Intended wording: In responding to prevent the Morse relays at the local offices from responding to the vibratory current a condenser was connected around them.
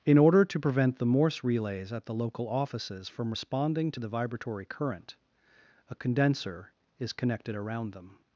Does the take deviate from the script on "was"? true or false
true